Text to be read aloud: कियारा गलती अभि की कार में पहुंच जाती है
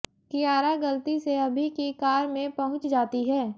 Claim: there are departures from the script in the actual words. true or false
true